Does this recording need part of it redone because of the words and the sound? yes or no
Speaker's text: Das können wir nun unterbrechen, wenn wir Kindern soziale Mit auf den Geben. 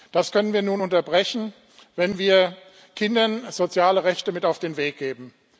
yes